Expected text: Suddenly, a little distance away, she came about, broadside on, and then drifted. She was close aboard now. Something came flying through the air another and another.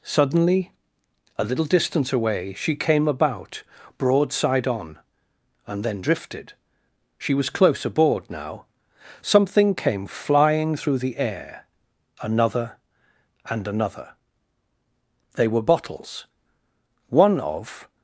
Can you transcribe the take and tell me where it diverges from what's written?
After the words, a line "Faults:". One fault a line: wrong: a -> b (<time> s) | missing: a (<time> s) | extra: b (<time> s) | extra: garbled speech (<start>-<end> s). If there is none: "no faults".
Suddenly, a little distance away, she came about, broadside on, and then drifted. She was close aboard now. Something came flying through the air another and another. They were bottles. One of
Faults:
extra: They were bottles One of (15.3 s)